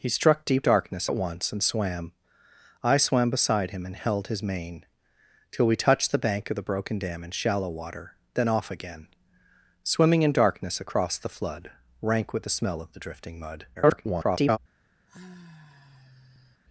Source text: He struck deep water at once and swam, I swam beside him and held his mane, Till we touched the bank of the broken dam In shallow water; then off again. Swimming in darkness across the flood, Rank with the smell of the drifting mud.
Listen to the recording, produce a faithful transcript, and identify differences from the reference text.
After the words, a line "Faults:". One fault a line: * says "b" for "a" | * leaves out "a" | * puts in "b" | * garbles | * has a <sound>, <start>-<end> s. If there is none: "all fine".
He struck deep darkness at once and swam, I swam beside him and held his mane, Till we touched the bank of the broken dam In shallow water; then off again. Swimming in darkness across the flood, Rank with the smell of the drifting mud. [garbled]
Faults:
* says "darkness" for "water"
* garbles
* has a sigh, 15.1-16.6 s